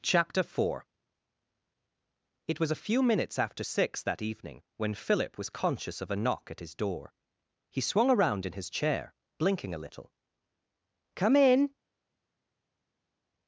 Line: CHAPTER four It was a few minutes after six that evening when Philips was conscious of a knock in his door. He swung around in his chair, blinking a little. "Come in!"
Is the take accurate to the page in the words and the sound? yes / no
no